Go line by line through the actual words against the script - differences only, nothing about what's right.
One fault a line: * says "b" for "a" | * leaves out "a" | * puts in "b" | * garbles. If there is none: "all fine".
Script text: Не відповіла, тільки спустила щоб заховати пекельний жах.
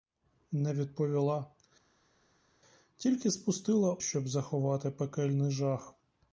all fine